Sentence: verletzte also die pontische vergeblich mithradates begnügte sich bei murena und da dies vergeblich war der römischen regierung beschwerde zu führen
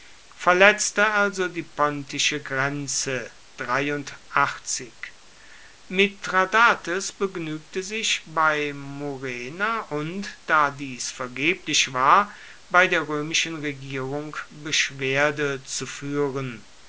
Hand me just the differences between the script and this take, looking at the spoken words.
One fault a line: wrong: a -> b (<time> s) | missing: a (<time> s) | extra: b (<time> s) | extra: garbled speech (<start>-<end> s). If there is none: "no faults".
wrong: vergeblich -> grenze (2.4 s)
extra: bei (12.7 s)